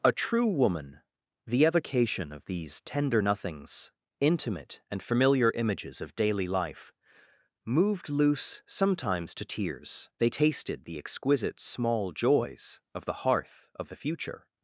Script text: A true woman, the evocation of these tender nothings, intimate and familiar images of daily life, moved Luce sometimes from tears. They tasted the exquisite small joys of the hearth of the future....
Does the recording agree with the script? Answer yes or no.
no